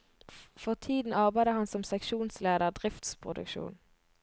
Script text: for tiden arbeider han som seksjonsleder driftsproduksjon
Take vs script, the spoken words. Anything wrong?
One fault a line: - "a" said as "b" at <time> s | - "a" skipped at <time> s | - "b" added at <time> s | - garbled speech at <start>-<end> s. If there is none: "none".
none